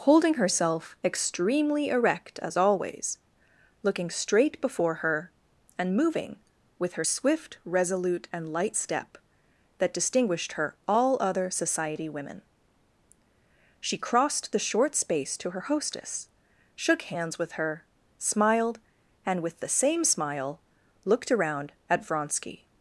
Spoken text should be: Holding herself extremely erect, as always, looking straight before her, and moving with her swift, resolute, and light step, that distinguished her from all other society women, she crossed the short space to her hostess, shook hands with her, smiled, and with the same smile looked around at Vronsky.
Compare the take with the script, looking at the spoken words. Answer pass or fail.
fail